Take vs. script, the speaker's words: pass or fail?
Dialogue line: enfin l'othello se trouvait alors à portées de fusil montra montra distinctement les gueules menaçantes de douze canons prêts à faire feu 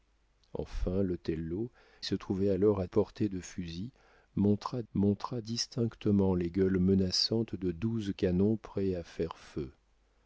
pass